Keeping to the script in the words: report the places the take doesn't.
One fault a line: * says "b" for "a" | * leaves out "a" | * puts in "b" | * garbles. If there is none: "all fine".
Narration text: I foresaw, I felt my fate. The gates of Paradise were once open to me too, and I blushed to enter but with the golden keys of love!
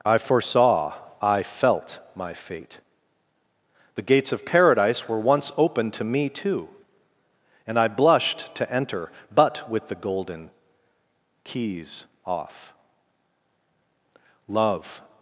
* says "off" for "of"